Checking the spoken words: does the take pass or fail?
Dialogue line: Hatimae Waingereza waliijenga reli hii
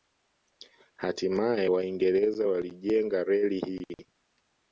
pass